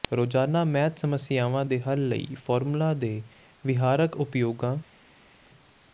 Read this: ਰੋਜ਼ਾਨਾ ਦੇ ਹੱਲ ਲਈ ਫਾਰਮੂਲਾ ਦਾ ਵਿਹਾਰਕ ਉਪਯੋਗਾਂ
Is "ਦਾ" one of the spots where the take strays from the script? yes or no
yes